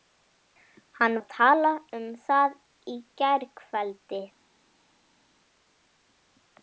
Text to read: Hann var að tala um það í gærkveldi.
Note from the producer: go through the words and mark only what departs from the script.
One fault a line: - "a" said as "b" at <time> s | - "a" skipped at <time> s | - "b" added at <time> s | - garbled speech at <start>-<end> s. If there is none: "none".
- "var" skipped at 1.2 s